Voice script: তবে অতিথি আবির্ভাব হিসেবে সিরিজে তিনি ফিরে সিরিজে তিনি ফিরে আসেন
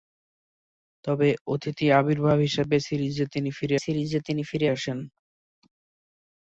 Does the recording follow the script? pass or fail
pass